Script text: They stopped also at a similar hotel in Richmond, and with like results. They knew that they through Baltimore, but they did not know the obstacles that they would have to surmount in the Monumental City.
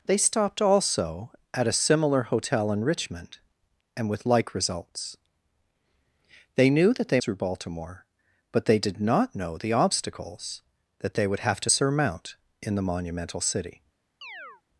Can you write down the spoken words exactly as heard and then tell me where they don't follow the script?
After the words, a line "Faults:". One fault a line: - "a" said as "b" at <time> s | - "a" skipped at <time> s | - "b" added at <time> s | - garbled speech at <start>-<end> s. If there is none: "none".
They stopped also at a similar hotel in Richmond, and with like results. They knew that they through Baltimore, but they did not know the obstacles that they would have to surmount in the Monumental City.
Faults:
none